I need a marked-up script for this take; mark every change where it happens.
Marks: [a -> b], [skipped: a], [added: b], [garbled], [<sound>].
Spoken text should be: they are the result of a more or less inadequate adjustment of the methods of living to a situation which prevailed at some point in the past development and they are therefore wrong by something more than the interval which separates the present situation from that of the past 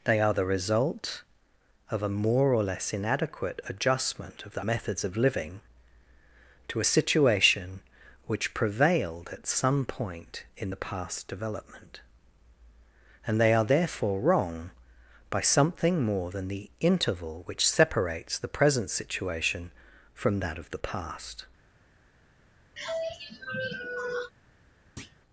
they are the result of a more or less inadequate adjustment of the methods of living to a situation which prevailed at some point in the past development and they are therefore wrong by something more than the interval which separates the present situation from that of the past [sigh] [thud]